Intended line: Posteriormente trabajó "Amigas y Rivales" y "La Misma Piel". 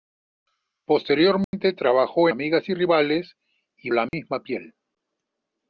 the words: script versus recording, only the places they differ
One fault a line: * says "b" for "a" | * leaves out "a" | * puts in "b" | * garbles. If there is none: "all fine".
all fine